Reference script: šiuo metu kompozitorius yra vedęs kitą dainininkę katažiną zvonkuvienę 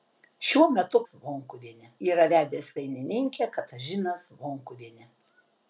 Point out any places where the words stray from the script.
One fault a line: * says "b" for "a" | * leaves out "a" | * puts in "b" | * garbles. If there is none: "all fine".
* says "zvonkuvienę" for "kompozitorius"
* leaves out "kitą"